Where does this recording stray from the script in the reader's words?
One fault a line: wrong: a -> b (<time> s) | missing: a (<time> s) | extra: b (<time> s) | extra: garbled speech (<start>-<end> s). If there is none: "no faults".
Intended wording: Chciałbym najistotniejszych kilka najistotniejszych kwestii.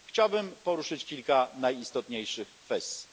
wrong: najistotniejszych -> poruszyć (0.5 s)